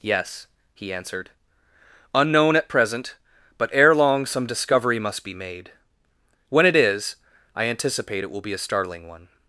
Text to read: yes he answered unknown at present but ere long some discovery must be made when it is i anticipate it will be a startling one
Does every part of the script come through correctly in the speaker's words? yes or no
yes